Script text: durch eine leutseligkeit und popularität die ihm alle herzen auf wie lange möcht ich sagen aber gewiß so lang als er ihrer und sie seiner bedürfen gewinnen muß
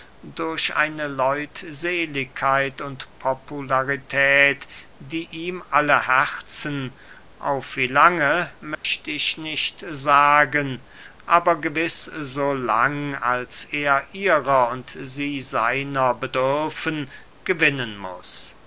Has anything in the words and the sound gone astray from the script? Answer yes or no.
yes